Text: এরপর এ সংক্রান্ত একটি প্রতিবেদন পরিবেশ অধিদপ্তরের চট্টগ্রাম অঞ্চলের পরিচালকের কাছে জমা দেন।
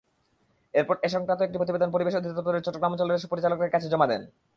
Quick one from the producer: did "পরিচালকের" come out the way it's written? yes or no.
yes